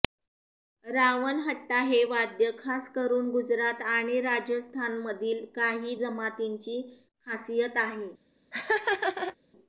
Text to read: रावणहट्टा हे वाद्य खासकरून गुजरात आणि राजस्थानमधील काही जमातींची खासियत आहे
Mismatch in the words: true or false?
false